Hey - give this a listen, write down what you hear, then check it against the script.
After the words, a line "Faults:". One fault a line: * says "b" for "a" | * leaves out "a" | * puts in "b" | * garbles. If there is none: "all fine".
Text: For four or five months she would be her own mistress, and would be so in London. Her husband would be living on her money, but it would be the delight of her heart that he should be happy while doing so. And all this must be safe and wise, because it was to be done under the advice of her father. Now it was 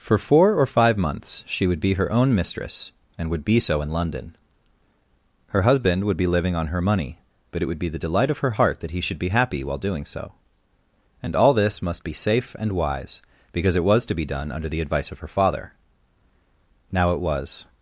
For four or five months she would be her own mistress, and would be so in London. Her husband would be living on her money, but it would be the delight of her heart that he should be happy while doing so. And all this must be safe and wise, because it was to be done under the advice of her father. Now it was
Faults:
all fine